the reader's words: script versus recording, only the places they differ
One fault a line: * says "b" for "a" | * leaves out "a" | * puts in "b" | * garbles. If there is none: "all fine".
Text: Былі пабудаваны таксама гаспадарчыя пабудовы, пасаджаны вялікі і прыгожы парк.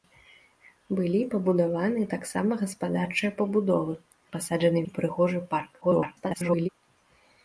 * leaves out "вялікі"
* garbles